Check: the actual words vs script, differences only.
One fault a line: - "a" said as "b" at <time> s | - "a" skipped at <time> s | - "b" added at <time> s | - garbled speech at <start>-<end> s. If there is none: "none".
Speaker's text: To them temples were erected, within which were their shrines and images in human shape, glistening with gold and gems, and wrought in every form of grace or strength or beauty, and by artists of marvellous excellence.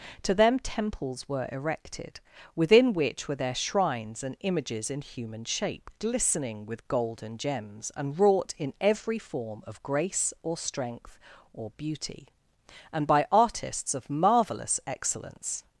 none